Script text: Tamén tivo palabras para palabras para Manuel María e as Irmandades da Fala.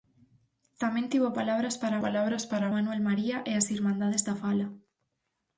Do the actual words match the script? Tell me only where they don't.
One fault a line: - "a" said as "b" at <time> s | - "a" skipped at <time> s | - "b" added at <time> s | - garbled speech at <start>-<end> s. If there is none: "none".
none